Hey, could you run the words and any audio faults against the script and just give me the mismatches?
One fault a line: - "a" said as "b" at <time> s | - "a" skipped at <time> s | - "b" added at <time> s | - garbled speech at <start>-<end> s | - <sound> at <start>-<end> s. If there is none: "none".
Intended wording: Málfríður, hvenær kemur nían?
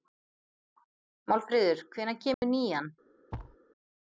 - dropout at 2.3-2.4 s
- thud at 3.3-3.6 s